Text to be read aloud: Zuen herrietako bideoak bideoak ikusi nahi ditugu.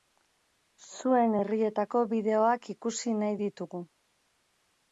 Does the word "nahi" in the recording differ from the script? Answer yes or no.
no